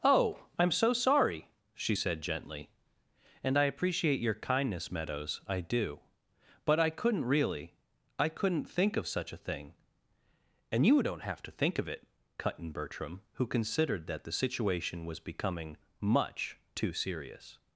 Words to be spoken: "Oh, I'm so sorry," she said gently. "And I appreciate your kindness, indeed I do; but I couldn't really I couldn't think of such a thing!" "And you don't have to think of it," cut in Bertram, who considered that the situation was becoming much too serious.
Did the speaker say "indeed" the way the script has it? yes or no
no